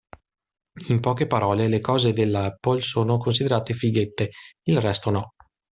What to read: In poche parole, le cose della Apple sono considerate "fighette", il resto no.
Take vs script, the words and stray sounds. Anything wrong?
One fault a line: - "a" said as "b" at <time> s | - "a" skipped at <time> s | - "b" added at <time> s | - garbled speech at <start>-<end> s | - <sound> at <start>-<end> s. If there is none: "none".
none